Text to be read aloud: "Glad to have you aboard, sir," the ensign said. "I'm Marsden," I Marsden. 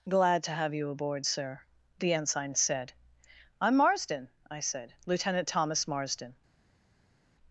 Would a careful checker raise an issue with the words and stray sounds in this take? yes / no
yes